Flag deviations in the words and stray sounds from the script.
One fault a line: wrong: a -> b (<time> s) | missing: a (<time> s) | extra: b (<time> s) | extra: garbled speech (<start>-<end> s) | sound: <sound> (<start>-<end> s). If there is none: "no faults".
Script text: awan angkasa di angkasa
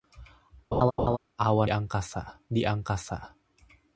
sound: laugh (0.7-1.2 s)